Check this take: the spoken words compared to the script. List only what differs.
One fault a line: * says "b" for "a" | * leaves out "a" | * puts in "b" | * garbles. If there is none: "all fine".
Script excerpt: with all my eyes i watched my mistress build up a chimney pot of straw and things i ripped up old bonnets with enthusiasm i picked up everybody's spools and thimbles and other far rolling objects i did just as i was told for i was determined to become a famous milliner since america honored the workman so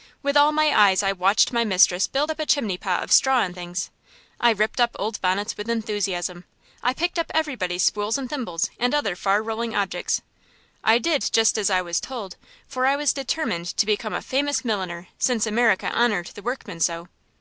all fine